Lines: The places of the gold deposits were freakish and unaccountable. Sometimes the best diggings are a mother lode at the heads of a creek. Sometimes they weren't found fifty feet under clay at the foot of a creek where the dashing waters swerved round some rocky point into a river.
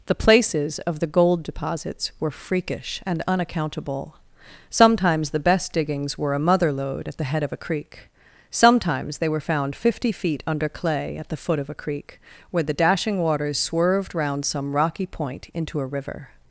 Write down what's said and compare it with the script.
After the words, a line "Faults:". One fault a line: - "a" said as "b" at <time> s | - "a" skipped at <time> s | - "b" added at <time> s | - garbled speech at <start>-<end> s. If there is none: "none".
The places of the gold deposits were freakish and unaccountable. Sometimes the best diggings were a mother lode at the head of a creek. Sometimes they were found fifty feet under clay at the foot of a creek where the dashing waters swerved round some rocky point into a river.
Faults:
- "are" said as "were" at 6.2 s
- "heads" said as "head" at 7.2 s
- "weren't" said as "were" at 9.3 s